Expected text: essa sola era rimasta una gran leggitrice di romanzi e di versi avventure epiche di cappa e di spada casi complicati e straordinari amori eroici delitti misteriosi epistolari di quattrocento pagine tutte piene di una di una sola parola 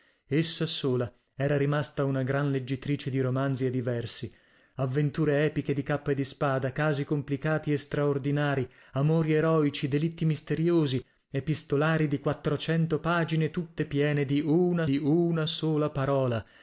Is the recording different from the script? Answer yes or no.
no